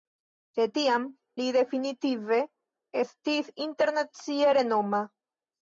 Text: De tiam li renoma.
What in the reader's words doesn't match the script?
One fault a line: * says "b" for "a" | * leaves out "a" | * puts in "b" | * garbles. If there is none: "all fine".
* puts in "definitive estis internacie"